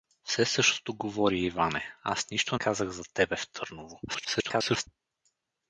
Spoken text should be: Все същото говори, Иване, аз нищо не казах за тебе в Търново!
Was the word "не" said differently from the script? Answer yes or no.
yes